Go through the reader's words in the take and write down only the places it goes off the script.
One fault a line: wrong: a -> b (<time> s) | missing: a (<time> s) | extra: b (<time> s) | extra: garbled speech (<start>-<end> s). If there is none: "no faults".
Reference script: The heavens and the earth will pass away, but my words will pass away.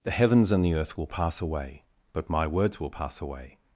no faults